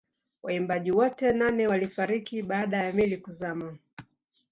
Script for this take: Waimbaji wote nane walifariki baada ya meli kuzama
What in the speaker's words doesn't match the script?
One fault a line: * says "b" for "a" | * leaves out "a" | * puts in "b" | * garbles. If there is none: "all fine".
all fine